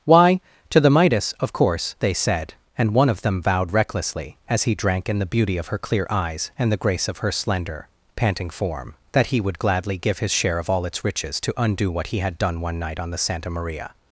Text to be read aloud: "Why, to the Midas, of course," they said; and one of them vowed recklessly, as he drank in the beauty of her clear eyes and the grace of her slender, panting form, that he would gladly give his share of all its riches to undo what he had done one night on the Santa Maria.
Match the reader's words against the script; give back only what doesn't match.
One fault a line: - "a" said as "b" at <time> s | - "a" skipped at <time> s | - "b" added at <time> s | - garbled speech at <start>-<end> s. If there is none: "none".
none